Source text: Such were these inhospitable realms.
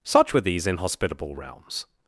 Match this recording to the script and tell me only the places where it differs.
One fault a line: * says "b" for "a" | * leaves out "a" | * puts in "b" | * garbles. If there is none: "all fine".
all fine